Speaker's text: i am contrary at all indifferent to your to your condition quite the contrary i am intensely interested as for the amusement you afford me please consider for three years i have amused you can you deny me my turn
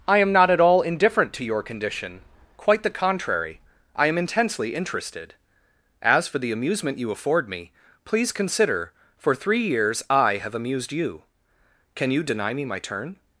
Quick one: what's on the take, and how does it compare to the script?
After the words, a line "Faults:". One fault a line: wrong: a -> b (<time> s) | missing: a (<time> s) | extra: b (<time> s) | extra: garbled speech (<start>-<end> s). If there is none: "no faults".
i am not at all indifferent to your condition quite the contrary i am intensely interested as for the amusement you afford me please consider for three years i have amused you can you deny me my turn
Faults:
wrong: contrary -> not (0.3 s)
missing: to your (1.6 s)